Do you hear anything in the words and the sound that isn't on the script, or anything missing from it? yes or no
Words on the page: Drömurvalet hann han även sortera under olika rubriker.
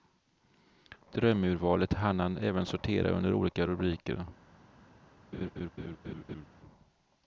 yes